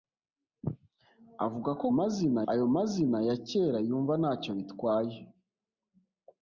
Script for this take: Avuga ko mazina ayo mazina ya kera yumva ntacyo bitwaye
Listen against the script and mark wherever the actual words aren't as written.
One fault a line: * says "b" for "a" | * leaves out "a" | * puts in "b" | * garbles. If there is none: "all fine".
all fine